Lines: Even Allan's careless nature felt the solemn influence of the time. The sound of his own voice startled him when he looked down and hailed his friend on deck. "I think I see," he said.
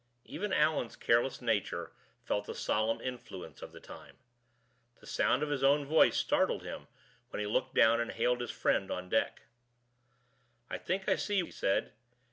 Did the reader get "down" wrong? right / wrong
right